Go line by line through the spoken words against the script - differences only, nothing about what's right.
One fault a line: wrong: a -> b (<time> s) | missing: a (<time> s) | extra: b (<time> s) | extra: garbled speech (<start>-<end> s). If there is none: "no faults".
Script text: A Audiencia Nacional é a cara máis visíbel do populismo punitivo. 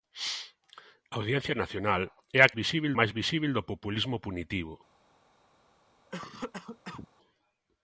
wrong: cara -> visíbel (2.6 s)